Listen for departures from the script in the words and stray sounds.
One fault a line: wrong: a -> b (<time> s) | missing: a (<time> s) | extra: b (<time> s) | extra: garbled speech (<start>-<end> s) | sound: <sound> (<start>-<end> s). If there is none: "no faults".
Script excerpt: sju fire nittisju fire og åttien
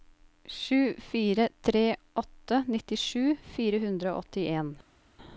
extra: tre åtte (1.6 s)
extra: hundre (3.9 s)